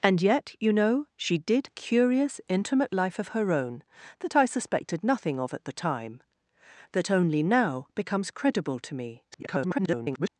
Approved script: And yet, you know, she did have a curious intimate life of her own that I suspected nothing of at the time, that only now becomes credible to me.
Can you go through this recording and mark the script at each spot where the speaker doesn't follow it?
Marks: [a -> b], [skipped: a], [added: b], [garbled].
And yet, you know, she did [skipped: have] a curious intimate life of her own that I suspected nothing of at the time, that only now becomes credible to me. [garbled]